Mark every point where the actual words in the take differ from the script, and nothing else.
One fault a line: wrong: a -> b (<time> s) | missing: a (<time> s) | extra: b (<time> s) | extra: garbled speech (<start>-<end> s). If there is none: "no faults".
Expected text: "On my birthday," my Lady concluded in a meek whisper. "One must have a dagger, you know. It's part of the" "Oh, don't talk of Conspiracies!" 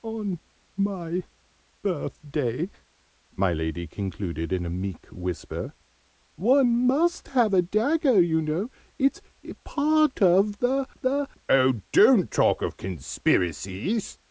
extra: the (11.0 s)